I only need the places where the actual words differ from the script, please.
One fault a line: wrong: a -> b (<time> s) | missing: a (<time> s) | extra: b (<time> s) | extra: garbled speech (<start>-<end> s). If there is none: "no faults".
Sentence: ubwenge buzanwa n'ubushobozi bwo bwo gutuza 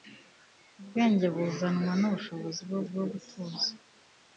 no faults